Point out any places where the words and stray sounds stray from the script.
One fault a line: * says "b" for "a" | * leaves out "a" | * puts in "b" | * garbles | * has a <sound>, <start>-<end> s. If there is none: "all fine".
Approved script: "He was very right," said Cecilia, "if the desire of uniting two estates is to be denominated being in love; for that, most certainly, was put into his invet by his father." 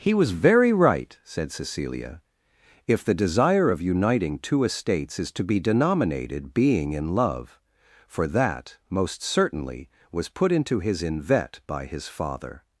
all fine